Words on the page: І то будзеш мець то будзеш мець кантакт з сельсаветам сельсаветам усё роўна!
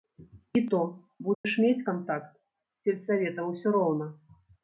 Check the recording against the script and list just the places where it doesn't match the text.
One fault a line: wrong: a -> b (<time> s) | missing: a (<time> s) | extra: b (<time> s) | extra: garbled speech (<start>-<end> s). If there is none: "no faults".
missing: то будзеш мець (1.9 s)
missing: сельсаветам (3.4 s)